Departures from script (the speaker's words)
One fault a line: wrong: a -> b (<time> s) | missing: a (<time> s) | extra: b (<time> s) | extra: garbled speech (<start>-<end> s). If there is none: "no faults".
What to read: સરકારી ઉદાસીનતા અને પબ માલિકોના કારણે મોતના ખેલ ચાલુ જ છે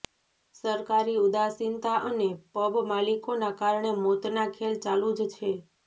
no faults